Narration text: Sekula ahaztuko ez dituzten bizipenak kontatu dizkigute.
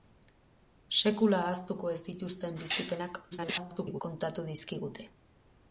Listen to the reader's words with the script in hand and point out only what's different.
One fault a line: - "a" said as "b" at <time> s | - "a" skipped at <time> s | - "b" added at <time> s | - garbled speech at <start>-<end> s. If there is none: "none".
- garbled speech at 3.3-4.0 s